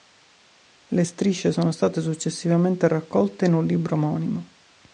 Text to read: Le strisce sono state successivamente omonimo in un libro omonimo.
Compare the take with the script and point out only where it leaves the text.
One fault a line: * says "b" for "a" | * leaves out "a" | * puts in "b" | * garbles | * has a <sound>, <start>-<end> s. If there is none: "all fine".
* says "raccolte" for "omonimo"